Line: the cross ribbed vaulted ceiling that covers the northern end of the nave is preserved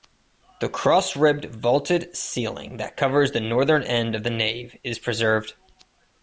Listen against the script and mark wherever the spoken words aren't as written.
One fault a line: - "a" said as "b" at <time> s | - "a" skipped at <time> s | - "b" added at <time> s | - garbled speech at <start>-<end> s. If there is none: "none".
none